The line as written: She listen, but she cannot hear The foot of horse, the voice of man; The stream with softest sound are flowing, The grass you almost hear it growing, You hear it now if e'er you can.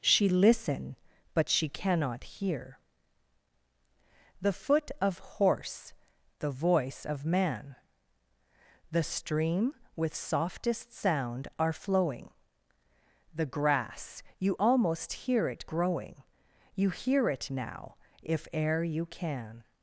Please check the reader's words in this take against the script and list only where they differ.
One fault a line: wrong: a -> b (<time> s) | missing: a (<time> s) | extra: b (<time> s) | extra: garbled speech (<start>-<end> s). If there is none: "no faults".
no faults